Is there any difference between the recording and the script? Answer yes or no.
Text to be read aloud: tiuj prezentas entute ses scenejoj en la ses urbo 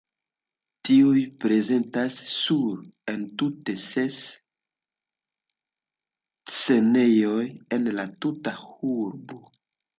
yes